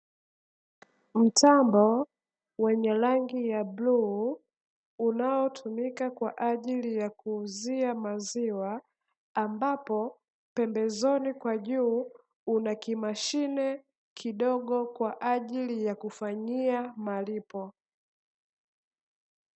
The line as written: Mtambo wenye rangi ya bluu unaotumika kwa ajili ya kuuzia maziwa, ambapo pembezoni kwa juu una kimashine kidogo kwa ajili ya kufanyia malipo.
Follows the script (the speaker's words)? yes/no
yes